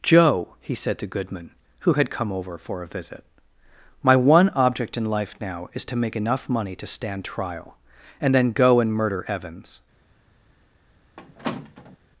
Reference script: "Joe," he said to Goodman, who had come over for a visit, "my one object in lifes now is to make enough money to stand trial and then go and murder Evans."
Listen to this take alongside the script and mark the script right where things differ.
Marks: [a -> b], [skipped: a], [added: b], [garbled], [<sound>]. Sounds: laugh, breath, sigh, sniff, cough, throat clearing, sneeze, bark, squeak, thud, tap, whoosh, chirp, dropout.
"Joe," he said to Goodman, who had come over for a visit, "my one object in [lifes -> life] now is to make enough money to stand trial and then go and murder Evans." [squeak]